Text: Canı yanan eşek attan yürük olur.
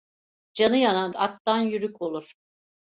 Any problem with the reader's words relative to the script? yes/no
yes